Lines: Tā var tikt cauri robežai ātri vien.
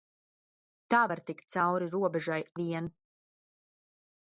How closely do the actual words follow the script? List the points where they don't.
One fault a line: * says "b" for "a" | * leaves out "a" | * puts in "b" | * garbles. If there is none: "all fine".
* leaves out "ātri"